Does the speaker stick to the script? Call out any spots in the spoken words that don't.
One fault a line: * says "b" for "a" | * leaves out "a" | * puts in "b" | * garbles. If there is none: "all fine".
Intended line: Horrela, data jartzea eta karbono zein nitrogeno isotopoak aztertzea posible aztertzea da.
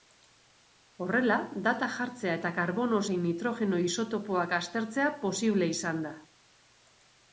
* says "izan" for "aztertzea"